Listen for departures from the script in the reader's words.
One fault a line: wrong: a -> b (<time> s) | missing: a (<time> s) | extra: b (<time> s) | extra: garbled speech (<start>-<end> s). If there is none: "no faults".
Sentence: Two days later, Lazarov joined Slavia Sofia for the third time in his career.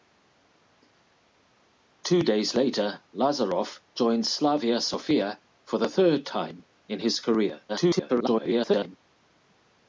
extra: garbled speech (7.7-9.0 s)